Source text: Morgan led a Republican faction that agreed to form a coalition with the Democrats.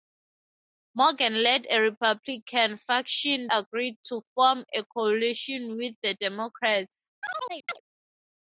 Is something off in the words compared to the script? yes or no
yes